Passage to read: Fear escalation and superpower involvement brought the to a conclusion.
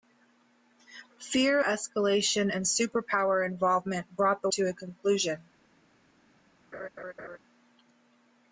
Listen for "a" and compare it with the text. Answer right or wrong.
right